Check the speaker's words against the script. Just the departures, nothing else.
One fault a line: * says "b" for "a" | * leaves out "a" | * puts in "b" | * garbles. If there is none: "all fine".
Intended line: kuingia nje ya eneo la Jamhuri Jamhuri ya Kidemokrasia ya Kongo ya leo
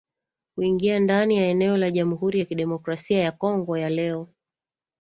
* says "ndani" for "nje"
* leaves out "Jamhuri"